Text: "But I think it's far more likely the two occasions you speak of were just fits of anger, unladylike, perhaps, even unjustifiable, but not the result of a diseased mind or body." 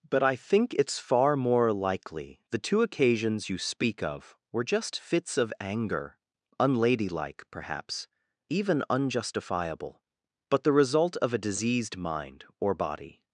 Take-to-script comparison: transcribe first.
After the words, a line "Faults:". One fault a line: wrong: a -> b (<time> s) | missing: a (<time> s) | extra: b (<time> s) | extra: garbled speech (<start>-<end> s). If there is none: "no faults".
"But I think it's far more likely the two occasions you speak of were just fits of anger, unladylike, perhaps, even unjustifiable, but the result of a diseased mind or body."
Faults:
missing: not (10.6 s)